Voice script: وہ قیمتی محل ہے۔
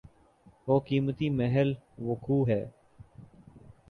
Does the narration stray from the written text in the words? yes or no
yes